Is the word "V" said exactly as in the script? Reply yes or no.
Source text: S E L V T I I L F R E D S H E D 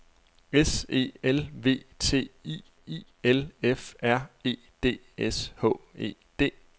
yes